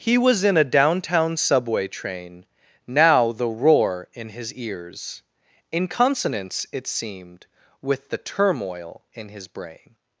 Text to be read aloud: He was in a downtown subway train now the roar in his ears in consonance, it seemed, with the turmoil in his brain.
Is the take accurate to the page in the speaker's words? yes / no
yes